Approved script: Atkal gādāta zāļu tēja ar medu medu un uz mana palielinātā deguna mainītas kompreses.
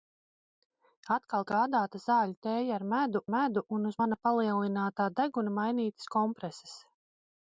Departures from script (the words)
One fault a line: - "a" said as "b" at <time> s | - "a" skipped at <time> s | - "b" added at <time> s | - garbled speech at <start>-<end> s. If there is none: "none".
none